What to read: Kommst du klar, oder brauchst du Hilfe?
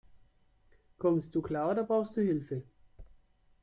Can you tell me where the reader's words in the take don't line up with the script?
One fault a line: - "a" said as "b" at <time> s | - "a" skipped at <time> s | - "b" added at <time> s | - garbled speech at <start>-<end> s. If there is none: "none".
none